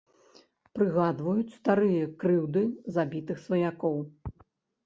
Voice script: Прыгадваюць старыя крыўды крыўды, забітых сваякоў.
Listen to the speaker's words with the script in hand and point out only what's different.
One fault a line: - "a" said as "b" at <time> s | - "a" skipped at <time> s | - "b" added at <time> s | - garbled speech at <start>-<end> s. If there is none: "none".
- "крыўды" skipped at 2.6 s